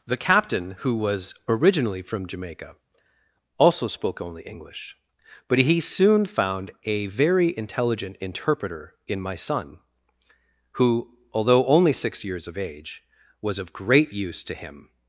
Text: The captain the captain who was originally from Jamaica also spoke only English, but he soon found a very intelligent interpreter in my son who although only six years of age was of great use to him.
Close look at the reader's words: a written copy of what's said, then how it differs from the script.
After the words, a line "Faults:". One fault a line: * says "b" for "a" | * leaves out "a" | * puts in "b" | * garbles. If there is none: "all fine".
The captain who was originally from Jamaica also spoke only English, but he soon found a very intelligent interpreter in my son who although only six years of age was of great use to him.
Faults:
* leaves out "the captain"